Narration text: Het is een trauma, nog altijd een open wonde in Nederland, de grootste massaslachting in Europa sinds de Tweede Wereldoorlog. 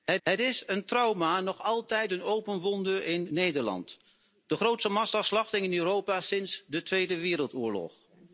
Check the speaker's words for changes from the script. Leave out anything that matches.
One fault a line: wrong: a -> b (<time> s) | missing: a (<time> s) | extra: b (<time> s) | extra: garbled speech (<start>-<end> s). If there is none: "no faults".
extra: het (0.2 s)